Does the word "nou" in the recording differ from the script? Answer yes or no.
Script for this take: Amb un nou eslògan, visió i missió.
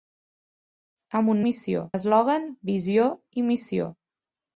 yes